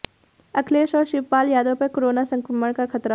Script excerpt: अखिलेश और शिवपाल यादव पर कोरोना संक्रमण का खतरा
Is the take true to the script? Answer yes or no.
yes